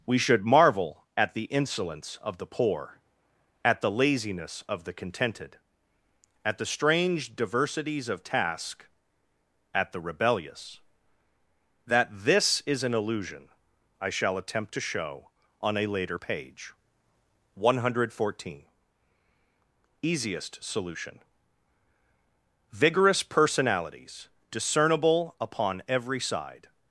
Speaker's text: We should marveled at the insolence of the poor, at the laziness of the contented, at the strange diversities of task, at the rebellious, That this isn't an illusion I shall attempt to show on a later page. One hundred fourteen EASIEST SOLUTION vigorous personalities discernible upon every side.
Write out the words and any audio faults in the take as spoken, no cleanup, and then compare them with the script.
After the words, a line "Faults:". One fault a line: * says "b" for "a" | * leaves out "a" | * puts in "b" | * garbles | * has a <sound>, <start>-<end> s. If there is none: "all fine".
We should marvel at the insolence of the poor, at the laziness of the contented, at the strange diversities of task, at the rebellious, That this is an illusion I shall attempt to show on a later page. One hundred fourteen EASIEST SOLUTION vigorous personalities discernible upon every side.
Faults:
* says "marvel" for "marveled"
* says "is" for "isn't"